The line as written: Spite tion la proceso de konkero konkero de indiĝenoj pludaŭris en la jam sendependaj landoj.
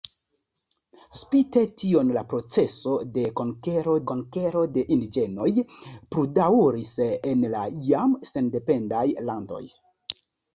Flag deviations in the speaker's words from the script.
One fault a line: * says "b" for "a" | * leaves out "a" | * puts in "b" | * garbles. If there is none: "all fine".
all fine